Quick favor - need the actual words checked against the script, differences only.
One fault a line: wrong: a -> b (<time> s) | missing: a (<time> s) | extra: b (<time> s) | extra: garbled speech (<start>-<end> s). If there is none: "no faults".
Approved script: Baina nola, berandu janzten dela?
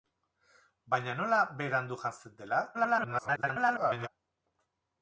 extra: garbled speech (2.7-4.1 s)